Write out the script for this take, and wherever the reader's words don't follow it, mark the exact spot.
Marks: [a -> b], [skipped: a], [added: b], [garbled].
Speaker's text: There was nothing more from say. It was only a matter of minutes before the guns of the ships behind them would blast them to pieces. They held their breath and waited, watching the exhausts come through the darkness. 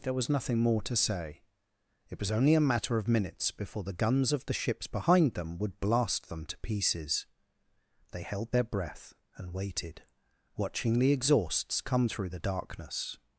There was nothing more [from -> to] say. It was only a matter of minutes before the guns of the ships behind them would blast them to pieces. They held their breath and waited, watching the exhausts come through the darkness.